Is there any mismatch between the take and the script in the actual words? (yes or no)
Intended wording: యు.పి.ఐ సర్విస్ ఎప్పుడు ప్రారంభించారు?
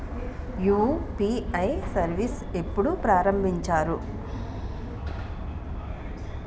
no